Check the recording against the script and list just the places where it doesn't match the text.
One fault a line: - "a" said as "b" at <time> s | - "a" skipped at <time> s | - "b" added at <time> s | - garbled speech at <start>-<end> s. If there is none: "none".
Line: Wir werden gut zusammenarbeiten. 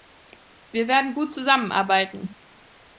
none